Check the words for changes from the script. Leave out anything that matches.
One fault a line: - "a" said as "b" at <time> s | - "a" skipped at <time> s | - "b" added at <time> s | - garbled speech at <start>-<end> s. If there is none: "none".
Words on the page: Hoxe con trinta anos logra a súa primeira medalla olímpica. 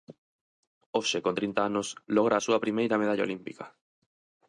none